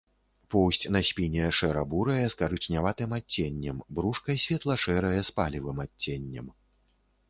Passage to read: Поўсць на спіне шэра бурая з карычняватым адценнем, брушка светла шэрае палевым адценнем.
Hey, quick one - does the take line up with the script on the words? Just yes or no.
no